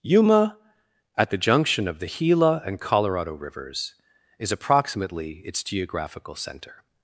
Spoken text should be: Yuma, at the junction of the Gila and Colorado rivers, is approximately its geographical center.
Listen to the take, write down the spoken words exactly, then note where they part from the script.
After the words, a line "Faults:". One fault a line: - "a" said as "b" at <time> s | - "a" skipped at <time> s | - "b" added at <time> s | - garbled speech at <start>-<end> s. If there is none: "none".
Yuma, at the junction of the Gila and Colorado rivers, is approximately its geographical center.
Faults:
none